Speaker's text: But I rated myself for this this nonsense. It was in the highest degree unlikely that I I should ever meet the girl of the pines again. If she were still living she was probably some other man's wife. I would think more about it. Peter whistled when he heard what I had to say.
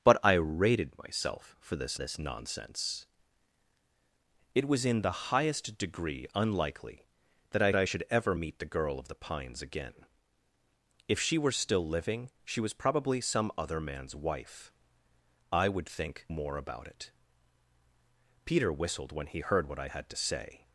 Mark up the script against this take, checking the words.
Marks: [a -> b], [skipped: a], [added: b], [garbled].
But I rated myself for this this nonsense. It was in the highest degree unlikely that I I should ever meet the girl of the pines again. If she were still living she was probably some other man's wife. I would think more about it. Peter whistled when he heard what I had to say.